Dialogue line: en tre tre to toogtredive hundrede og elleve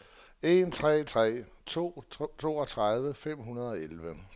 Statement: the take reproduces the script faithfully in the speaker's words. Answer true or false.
false